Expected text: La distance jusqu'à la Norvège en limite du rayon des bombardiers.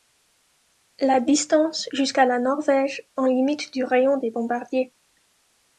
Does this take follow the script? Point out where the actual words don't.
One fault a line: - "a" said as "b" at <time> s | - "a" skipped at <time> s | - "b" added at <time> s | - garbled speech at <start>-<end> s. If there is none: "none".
none